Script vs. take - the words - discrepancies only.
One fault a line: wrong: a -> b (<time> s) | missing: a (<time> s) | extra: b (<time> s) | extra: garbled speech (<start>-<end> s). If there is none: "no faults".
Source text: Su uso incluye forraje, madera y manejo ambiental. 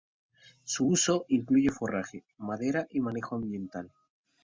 no faults